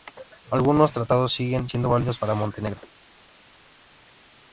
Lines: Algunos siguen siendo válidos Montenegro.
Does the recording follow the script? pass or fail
fail